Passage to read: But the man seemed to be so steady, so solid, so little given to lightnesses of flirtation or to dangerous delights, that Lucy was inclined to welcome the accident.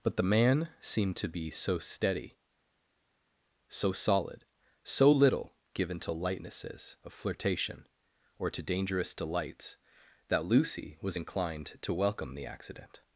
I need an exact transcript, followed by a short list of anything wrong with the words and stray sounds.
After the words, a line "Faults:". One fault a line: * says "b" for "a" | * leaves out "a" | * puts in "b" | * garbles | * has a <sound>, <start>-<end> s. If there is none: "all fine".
But the man seemed to be so steady, so solid, so little given to lightnesses of flirtation or to dangerous delights, that Lucy was inclined to welcome the accident.
Faults:
all fine